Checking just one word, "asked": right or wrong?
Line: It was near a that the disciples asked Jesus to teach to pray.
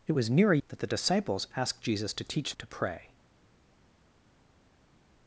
right